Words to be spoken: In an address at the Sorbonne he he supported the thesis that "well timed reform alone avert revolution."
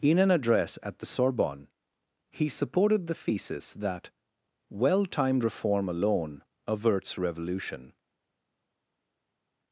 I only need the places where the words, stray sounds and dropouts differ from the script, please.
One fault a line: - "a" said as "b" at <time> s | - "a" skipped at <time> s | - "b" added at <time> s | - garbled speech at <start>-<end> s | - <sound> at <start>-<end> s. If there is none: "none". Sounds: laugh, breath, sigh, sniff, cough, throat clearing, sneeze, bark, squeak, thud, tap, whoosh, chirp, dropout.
- "he" skipped at 2.5 s
- "avert" said as "averts" at 6.7 s